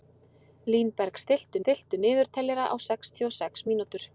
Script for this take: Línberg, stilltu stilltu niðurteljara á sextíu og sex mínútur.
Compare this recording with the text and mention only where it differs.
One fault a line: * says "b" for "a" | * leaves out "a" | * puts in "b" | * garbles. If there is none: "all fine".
all fine